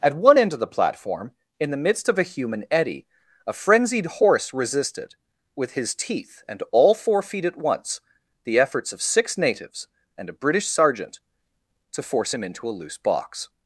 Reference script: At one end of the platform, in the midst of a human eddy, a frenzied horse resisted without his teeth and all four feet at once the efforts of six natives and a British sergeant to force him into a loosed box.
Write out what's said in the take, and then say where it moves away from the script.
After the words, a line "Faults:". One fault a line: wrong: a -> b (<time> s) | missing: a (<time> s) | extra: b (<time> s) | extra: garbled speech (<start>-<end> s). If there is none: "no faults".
At one end of the platform, in the midst of a human eddy, a frenzied horse resisted with his teeth and all four feet at once the efforts of six natives and a British sergeant to force him into a loose box.
Faults:
wrong: without -> with (5.6 s)
wrong: loosed -> loose (12.7 s)